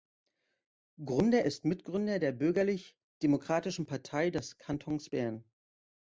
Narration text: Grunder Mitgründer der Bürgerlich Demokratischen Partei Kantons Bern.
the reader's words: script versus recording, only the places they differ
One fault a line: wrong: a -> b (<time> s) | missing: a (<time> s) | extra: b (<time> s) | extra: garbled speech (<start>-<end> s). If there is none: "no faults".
extra: ist (1.4 s)
extra: des (4.3 s)